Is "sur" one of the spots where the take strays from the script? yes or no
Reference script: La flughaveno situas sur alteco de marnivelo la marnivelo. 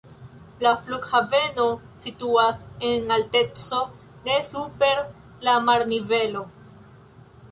yes